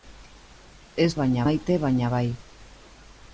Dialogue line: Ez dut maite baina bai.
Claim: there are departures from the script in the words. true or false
true